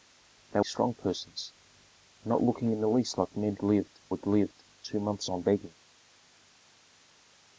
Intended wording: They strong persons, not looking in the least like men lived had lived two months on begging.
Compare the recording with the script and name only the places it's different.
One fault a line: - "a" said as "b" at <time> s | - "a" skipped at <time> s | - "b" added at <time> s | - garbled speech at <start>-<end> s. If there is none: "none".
none